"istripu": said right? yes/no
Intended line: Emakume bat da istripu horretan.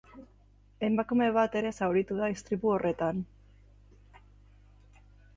yes